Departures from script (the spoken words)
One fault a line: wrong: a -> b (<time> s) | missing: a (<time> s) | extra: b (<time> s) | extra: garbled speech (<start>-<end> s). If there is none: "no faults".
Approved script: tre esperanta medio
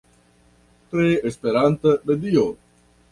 no faults